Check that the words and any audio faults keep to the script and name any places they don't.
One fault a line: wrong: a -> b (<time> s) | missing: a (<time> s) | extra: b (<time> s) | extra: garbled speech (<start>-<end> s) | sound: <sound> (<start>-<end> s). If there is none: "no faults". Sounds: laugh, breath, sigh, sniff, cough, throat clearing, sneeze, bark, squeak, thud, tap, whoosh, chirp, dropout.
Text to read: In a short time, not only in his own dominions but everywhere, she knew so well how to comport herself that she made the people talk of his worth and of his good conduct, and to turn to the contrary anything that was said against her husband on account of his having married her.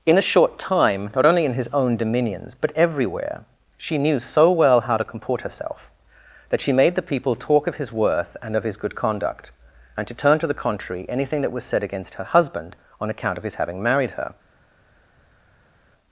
no faults